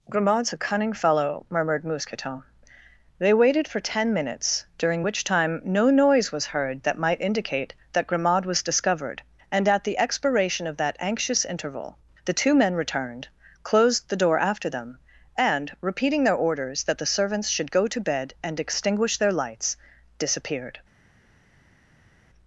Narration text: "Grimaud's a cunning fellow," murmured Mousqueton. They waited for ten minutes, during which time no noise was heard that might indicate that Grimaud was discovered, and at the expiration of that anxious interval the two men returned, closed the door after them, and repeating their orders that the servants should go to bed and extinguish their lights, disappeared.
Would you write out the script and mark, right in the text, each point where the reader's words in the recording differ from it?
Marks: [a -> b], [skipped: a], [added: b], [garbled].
"Grimaud's a cunning fellow," murmured Mousqueton. They waited for ten minutes, during which time no noise was heard that might indicate that Grimaud was discovered, and at the expiration of that anxious interval the two men returned, closed the door after them, and repeating their orders that the servants should go to bed and extinguish their lights, disappeared.